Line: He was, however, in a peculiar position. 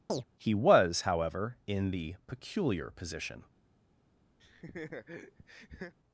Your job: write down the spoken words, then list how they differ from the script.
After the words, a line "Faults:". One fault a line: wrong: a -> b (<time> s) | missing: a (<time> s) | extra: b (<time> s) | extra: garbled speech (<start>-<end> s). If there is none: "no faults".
He was, however, in the peculiar position.
Faults:
wrong: a -> the (1.9 s)